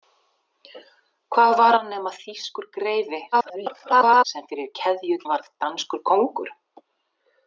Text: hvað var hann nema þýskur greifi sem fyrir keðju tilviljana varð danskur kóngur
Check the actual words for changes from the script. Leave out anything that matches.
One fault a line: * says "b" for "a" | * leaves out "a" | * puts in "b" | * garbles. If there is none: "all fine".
* garbles
* leaves out "tilviljana"